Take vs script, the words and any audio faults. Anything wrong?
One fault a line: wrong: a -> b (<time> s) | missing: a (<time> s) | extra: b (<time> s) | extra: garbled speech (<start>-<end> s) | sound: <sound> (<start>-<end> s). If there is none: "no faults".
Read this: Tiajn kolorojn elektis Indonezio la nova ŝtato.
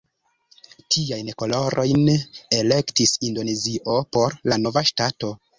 extra: por (4.2 s)